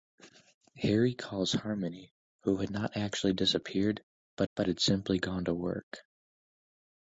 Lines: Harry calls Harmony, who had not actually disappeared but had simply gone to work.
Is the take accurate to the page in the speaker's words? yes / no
no